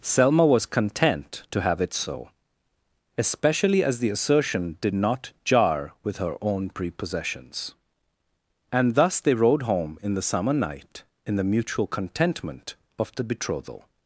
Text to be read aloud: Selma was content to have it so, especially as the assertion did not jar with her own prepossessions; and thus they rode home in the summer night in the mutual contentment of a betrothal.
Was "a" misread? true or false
true